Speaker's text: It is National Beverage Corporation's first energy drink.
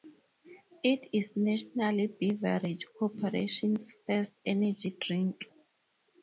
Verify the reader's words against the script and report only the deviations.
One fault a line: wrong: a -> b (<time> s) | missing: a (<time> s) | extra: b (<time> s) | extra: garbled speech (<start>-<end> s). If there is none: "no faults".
no faults